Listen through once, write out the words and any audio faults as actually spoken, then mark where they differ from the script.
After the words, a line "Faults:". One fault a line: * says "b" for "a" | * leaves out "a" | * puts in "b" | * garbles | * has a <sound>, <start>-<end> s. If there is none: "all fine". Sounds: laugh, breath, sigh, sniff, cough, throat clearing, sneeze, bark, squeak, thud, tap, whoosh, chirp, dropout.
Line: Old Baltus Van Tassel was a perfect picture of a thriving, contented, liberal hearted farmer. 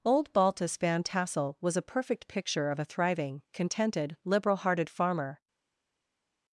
Old Baltus Van Tassel was a perfect picture of a thriving, contented, liberal hearted farmer.
Faults:
all fine